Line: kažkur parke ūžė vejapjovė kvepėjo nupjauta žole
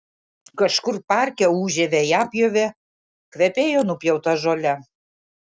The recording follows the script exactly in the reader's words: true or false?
true